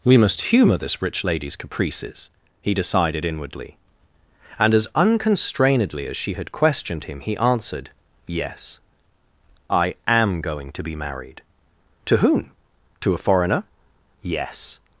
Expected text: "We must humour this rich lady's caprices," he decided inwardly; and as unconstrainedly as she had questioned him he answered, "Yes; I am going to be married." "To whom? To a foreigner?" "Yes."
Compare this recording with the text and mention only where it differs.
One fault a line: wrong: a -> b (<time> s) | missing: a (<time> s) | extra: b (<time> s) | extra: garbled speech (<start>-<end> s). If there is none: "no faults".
no faults